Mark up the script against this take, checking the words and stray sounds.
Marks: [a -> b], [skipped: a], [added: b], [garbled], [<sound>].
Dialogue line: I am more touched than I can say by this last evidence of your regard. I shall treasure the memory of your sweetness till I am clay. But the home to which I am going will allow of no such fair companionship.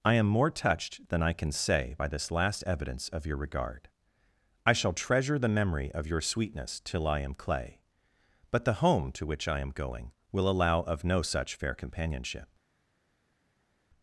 I am more touched than I can say by this last evidence of your regard. I shall treasure the memory of your sweetness till I am clay. But the home to which I am going will allow of no such fair companionship.